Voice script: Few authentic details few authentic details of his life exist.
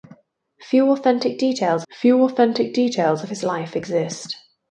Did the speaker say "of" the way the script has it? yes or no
yes